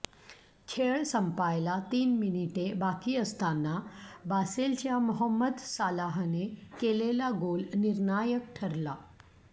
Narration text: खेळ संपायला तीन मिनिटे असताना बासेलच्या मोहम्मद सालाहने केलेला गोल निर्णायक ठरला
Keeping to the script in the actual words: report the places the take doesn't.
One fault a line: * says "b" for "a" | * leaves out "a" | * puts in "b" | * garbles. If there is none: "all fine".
* puts in "बाकी"